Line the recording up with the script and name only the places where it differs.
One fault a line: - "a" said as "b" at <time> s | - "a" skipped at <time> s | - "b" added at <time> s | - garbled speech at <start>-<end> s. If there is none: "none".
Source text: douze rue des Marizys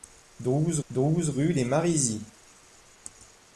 - "douze" added at 0.9 s